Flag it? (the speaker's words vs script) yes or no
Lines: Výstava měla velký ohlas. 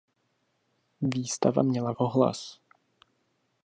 yes